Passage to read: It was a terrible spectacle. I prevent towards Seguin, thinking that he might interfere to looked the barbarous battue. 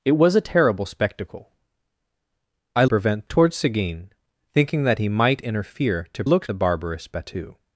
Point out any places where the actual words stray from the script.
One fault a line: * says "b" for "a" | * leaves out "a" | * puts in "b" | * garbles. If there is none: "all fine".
all fine